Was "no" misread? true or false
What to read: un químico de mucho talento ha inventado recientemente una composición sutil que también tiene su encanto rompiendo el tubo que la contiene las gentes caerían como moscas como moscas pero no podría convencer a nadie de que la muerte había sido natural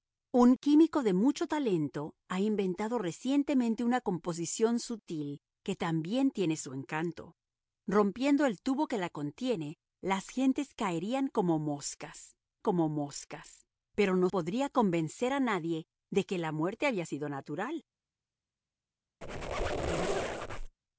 false